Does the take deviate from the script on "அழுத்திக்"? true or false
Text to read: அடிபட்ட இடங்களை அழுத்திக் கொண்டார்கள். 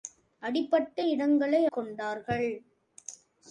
true